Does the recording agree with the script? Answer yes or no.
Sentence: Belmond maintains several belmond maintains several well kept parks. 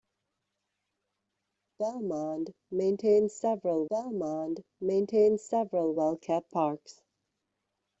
yes